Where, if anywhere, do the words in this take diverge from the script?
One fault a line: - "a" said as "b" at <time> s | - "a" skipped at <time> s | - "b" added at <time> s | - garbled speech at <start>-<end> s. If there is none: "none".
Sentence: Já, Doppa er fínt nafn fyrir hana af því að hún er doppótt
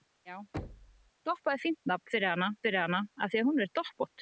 - "fyrir hana" added at 2.6 s